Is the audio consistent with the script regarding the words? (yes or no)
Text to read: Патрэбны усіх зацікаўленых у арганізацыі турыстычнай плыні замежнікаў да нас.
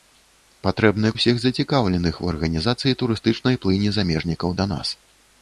yes